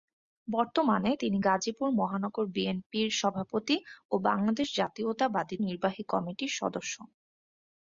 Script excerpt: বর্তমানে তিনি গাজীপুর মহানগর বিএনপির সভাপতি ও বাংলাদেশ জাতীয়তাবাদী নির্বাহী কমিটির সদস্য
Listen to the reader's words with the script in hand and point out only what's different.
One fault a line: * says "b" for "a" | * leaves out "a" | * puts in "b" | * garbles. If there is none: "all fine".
all fine